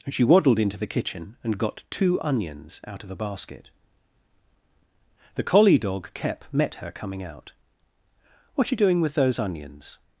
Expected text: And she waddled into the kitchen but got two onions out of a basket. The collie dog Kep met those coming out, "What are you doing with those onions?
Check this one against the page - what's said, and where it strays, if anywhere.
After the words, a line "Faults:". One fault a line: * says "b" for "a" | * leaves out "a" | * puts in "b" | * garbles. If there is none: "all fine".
And she waddled into the kitchen and got two onions out of a basket. The collie dog Kep met her coming out, "What are you doing with those onions?
Faults:
* says "and" for "but"
* says "her" for "those"